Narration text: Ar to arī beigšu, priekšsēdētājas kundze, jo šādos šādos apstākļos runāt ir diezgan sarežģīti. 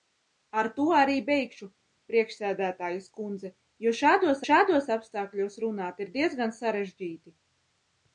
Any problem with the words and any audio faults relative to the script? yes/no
no